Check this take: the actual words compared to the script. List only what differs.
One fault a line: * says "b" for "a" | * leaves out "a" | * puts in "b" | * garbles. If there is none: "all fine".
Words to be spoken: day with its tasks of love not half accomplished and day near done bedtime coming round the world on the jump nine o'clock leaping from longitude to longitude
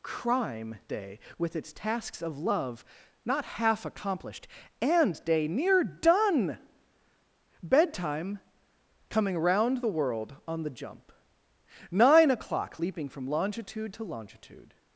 * puts in "crime"